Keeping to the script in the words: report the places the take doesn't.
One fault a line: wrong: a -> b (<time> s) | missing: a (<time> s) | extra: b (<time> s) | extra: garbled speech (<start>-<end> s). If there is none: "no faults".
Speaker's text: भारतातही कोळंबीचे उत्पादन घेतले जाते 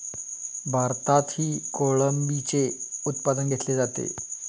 no faults